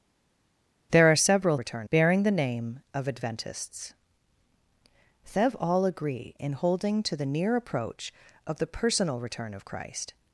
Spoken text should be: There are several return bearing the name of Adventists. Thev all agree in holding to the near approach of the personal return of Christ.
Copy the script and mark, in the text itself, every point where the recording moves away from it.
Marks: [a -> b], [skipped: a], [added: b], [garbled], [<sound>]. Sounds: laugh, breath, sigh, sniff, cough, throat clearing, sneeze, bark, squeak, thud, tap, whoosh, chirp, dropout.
There are several return bearing the name of Adventists. Thev all agree in holding to the near approach of the personal return of Christ.